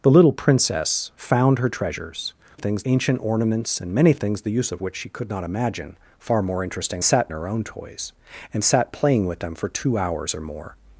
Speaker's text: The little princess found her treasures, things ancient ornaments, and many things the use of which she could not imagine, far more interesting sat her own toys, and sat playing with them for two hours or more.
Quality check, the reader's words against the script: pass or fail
pass